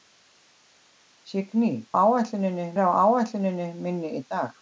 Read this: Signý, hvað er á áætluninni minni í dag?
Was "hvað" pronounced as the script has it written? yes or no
no